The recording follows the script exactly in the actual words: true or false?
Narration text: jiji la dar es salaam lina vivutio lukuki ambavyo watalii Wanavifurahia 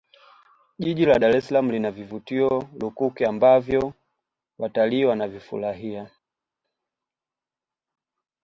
true